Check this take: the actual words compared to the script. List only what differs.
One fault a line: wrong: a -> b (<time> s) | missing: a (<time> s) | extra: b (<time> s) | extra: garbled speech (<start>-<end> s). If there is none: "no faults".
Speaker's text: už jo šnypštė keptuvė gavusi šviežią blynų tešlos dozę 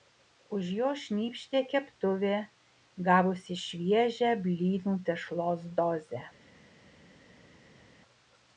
no faults